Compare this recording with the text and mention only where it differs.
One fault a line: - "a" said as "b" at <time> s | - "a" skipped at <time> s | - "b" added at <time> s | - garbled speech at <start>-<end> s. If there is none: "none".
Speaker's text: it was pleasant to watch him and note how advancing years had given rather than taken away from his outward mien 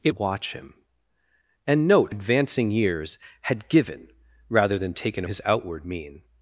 - "was pleasant to" skipped at 0.1 s
- "how" skipped at 2.1 s
- "away from" skipped at 5.2 s